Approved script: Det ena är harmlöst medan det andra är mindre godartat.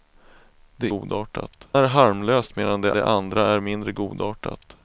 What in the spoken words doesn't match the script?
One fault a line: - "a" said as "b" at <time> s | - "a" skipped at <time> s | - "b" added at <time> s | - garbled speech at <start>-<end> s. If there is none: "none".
- "ena" said as "godartat" at 0.8 s
- "det" added at 2.9 s